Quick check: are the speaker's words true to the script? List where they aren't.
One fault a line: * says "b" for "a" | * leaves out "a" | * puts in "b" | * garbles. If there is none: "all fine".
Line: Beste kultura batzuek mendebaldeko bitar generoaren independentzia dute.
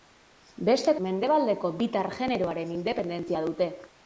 * leaves out "kultura batzuek"